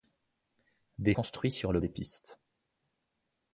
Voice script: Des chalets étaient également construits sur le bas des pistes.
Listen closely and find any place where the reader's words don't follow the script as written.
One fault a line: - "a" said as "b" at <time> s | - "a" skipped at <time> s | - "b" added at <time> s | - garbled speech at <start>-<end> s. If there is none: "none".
- "chalets étaient également" skipped at 1.1 s
- "bas" skipped at 1.8 s